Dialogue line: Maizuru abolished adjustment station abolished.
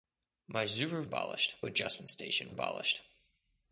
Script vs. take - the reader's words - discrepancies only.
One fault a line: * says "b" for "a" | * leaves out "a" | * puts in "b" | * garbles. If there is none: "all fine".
all fine